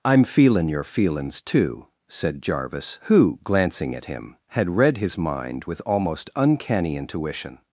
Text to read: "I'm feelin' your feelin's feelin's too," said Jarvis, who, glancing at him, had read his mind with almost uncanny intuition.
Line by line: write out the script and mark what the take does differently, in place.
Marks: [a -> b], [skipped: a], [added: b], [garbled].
"I'm feelin' your feelin's [skipped: feelin's] too," said Jarvis, who, glancing at him, had read his mind with almost uncanny intuition.